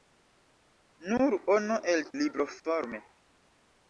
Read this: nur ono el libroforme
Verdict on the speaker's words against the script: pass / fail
pass